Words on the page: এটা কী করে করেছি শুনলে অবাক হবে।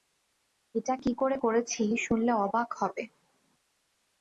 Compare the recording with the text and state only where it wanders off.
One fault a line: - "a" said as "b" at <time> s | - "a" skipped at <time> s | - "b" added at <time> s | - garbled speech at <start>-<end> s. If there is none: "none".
none